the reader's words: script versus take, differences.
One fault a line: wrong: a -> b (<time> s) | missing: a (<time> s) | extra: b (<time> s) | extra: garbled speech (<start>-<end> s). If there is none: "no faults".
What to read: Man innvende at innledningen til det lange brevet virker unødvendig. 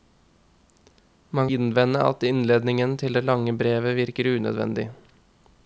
no faults